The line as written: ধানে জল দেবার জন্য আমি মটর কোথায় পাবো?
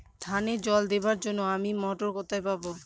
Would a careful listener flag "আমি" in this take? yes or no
no